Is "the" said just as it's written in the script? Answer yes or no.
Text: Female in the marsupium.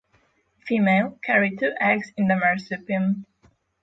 yes